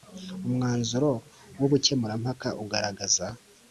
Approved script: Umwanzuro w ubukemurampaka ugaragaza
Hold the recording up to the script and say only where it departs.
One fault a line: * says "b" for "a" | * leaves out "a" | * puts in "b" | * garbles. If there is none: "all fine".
all fine